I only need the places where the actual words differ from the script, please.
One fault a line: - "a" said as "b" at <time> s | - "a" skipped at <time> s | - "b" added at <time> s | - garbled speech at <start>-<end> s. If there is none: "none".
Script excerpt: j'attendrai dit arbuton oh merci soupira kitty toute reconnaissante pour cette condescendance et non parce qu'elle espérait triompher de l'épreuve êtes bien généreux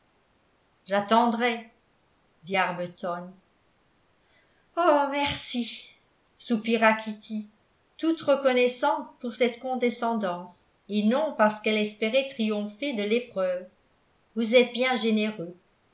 - "vous" added at 14.3 s